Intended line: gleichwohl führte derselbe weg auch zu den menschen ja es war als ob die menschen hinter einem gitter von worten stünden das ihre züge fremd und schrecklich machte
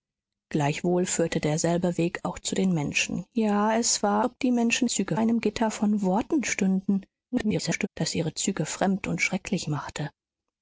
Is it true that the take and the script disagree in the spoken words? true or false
true